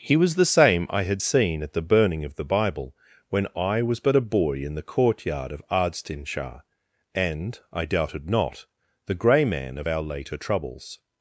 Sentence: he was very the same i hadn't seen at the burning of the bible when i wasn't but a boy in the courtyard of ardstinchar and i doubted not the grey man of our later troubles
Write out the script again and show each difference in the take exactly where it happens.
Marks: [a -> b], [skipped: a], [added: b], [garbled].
he was [skipped: very] the same i [hadn't -> had] seen at the burning of the bible when i [wasn't -> was] but a boy in the courtyard of ardstinchar and i doubted not the grey man of our later troubles